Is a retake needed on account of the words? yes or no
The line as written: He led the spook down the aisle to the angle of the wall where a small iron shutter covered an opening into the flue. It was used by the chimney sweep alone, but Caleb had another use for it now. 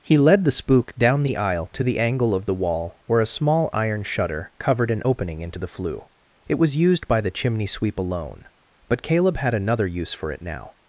no